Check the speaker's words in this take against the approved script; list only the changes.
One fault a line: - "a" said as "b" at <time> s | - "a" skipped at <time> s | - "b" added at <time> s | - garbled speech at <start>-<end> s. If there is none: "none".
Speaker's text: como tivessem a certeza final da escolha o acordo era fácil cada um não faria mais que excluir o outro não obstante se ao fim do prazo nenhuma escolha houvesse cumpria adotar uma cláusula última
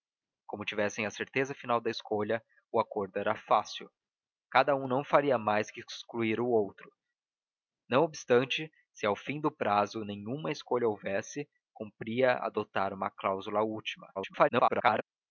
- garbled speech at 14.1-15.0 s